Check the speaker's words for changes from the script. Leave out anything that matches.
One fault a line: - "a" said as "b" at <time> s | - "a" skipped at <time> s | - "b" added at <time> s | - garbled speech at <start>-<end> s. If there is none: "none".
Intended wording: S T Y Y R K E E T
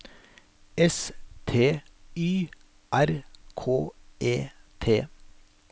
- "Y" skipped at 2.5 s
- "E" skipped at 4.5 s